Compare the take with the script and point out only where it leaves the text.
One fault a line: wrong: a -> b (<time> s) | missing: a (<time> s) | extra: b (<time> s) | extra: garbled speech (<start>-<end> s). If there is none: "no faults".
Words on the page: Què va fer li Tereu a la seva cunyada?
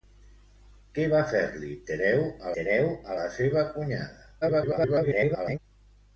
extra: Tereu a (2.6 s)
extra: garbled speech (4.4-5.6 s)